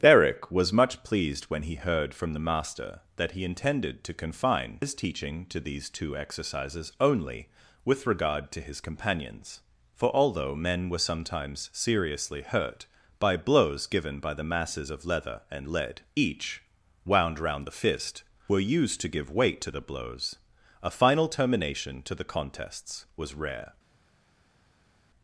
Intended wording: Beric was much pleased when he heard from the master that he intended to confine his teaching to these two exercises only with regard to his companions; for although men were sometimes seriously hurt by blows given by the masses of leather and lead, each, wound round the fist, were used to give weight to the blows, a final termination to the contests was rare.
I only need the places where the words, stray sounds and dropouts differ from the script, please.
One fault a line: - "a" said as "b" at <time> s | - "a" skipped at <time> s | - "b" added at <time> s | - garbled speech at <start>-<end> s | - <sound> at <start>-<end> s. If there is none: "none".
none